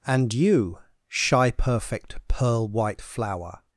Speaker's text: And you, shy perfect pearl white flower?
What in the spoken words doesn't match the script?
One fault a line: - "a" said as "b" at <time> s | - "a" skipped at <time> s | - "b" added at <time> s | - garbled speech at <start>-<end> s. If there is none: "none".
none